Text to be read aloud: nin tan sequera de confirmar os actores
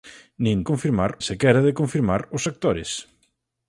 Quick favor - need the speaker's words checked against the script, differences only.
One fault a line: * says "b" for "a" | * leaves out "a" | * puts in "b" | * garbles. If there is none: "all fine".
* says "confirmar" for "tan"